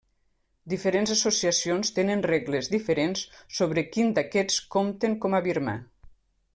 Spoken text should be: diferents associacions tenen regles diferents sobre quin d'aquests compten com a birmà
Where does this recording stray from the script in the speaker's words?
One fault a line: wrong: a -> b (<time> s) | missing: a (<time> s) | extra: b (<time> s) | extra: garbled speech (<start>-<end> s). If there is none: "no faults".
no faults